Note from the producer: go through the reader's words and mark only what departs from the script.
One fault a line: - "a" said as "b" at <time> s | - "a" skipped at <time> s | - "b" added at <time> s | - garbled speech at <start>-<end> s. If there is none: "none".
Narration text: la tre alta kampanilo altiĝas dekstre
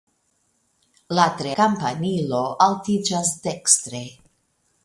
- "alta" skipped at 1.5 s